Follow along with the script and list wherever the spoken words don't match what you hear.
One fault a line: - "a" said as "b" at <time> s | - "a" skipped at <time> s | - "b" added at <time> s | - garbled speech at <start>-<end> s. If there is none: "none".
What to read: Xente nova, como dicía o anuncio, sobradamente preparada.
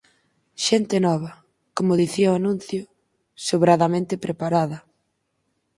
none